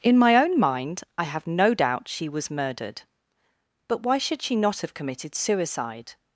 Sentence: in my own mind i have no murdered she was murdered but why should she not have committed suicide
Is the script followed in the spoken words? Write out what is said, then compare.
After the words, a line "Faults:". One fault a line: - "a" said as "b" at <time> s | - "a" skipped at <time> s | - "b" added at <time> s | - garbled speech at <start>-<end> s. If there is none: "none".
in my own mind i have no doubt she was murdered but why should she not have committed suicide
Faults:
- "murdered" said as "doubt" at 1.8 s